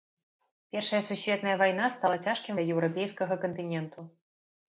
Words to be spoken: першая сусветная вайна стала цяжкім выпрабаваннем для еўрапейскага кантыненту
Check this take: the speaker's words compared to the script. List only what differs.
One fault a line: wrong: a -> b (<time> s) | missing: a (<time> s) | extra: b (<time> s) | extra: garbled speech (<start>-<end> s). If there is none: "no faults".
missing: выпрабаваннем (2.5 s)